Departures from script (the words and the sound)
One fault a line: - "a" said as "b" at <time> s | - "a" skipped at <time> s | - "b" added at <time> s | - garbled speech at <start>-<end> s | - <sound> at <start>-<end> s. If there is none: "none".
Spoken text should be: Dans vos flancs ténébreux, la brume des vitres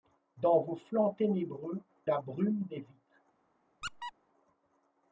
- squeak at 3.8-4.1 s